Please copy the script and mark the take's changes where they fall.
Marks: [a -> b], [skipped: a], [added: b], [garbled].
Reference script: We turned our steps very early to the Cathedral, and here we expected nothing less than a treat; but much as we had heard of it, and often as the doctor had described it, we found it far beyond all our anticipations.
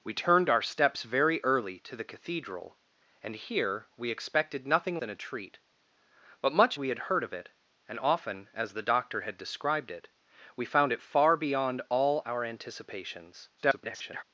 We turned our steps very early to the Cathedral, and here we expected nothing [skipped: less] than a treat; but much [skipped: as] we had heard of it, and often as the doctor had described it, we found it far beyond all our anticipations. [garbled]